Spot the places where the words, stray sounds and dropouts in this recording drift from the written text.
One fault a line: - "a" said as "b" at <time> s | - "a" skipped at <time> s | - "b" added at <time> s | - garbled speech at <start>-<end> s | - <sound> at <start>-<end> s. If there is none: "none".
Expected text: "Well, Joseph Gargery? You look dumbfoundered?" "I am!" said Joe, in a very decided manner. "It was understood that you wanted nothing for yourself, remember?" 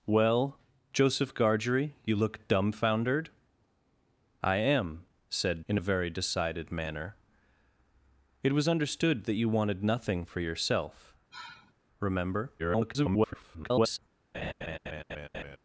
- "Joe" skipped at 5.6 s
- sigh at 11.3-11.7 s
- garbled speech at 12.6-14.0 s
- laugh at 14.3-15.6 s